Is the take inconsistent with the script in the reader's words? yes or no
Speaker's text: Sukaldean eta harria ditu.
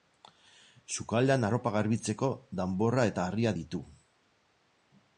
yes